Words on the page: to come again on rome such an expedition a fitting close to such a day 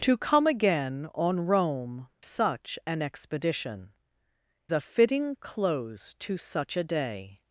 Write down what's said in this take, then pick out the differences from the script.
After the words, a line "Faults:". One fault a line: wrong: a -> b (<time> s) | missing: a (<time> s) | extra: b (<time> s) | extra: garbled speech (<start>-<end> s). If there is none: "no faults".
to come again on rome such an expedition a fitting close to such a day
Faults:
no faults